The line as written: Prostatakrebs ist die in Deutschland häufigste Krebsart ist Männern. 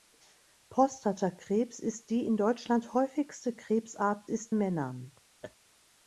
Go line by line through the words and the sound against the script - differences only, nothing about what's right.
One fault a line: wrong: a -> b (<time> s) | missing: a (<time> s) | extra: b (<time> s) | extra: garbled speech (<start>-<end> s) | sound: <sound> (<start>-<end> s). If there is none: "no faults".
sound: laugh (5.4-5.6 s)